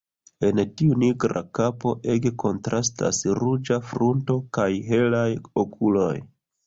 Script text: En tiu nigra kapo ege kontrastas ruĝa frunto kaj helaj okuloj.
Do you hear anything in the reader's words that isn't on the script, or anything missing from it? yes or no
no